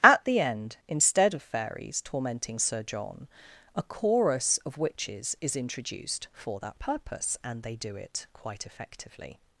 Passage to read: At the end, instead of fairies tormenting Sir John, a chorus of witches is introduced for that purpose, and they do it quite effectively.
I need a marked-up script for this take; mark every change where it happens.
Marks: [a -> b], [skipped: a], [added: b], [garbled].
At the end, instead of fairies tormenting Sir John, a chorus of witches is introduced for that purpose, and they do it quite effectively.